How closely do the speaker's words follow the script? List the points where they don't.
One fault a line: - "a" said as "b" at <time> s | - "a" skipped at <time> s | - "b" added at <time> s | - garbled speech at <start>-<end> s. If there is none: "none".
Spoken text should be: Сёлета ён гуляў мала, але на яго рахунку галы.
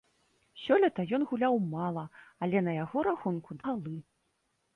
none